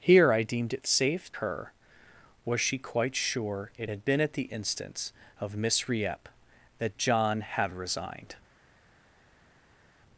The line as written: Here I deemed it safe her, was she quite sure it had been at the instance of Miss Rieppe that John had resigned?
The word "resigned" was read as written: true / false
true